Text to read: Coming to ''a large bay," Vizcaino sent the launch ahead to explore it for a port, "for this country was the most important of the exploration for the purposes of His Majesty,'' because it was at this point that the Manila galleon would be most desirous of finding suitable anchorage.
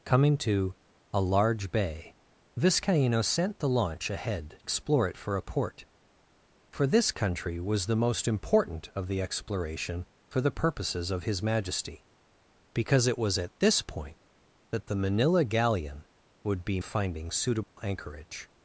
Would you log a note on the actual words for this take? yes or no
yes